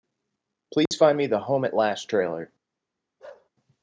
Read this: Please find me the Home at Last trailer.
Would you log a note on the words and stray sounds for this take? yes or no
yes